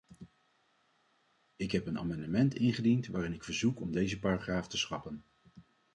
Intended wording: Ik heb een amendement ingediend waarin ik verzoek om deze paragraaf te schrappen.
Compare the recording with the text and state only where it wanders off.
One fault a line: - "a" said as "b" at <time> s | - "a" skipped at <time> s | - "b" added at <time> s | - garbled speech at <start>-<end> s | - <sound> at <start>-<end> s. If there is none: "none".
none